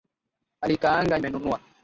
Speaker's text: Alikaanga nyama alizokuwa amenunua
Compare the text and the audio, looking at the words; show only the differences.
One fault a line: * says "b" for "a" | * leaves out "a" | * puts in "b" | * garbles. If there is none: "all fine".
* leaves out "nyama alizokuwa"